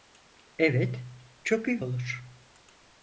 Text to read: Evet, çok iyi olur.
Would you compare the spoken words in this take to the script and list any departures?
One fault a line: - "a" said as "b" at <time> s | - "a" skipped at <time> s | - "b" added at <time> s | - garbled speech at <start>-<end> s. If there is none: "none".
none